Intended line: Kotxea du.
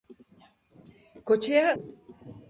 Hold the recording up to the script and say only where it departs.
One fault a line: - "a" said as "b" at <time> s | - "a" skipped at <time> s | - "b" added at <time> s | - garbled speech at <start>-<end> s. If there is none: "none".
none